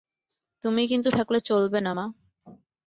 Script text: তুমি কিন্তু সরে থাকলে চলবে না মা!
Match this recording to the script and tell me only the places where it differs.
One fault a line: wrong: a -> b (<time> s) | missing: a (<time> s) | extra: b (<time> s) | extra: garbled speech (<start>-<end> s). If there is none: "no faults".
missing: সরে (1.1 s)